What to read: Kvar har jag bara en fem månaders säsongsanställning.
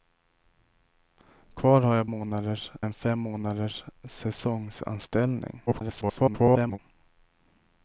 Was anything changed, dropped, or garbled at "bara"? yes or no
yes